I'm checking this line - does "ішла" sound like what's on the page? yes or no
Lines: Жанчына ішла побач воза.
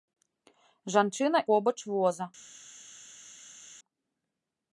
no